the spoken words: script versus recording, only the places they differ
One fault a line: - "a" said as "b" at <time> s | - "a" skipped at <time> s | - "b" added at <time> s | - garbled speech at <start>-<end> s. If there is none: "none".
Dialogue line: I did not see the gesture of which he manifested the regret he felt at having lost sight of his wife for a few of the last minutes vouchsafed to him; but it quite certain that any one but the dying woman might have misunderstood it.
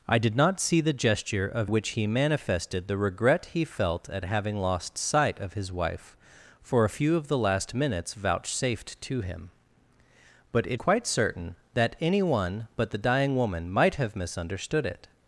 none